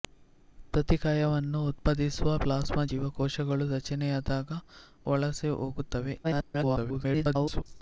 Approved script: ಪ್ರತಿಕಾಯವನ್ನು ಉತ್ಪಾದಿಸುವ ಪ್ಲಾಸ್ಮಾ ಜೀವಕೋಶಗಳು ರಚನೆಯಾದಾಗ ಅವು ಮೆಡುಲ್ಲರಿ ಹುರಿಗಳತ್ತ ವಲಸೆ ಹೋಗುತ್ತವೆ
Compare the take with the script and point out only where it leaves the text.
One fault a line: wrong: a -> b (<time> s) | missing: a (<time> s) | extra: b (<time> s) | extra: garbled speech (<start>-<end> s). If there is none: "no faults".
missing: ಅವು ಮೆಡುಲ್ಲರಿ ಹುರಿಗಳತ್ತ (4.6 s)
extra: garbled speech (6.2-7.6 s)